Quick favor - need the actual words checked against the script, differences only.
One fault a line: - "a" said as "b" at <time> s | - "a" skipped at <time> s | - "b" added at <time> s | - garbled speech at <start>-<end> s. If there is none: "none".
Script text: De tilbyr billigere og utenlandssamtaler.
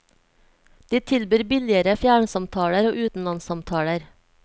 - "fjernsamtaler" added at 2.0 s